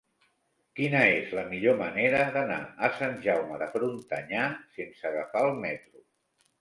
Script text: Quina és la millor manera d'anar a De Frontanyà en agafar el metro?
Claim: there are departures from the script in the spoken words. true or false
true